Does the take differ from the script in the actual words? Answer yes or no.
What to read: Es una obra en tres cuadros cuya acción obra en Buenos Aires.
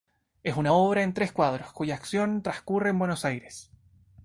yes